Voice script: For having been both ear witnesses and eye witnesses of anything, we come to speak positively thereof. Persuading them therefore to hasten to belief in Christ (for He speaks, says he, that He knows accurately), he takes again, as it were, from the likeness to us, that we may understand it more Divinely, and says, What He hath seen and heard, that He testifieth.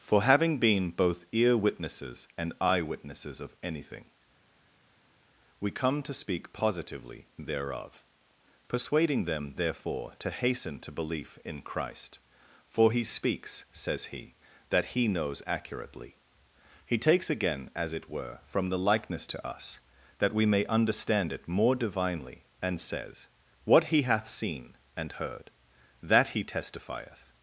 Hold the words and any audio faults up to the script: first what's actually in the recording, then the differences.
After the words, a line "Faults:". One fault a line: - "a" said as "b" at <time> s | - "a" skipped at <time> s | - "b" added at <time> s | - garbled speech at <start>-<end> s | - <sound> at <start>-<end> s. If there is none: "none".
For having been both ear witnesses and eye witnesses of anything, we come to speak positively thereof. Persuading them therefore to hasten to belief in Christ (for He speaks, says he, that He knows accurately), he takes again, as it were, from the likeness to us, that we may understand it more Divinely, and says, What He hath seen and heard, that He testifieth.
Faults:
none